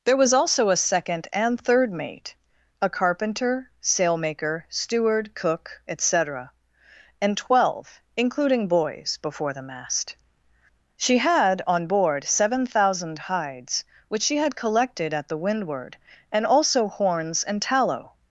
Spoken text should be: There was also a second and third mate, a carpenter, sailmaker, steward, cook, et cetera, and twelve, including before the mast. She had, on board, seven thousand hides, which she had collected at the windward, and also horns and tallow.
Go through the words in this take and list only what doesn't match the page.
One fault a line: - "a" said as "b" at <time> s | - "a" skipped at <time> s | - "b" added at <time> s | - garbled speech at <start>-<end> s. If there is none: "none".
- "boys" added at 8.7 s